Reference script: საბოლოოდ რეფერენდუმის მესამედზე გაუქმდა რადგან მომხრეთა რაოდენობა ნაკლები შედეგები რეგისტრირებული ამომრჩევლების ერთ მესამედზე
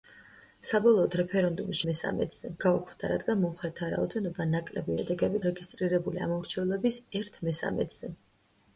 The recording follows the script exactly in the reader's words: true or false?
true